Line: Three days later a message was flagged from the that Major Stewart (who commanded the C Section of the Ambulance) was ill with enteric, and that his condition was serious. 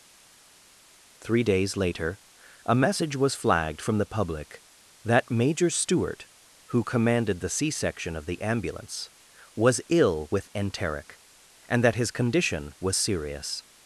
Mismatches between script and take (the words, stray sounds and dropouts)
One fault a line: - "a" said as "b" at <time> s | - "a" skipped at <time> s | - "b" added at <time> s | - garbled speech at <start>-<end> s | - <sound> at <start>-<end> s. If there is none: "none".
- "public" added at 4.1 s